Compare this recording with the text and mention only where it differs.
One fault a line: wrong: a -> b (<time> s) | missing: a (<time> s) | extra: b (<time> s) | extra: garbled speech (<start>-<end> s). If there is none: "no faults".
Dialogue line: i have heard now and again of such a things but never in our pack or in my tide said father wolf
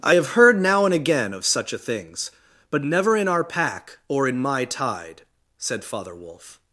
no faults